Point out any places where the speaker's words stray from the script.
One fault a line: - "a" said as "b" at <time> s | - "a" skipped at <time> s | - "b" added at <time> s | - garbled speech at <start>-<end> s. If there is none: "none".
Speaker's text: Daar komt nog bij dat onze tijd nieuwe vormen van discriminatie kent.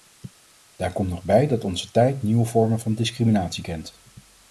none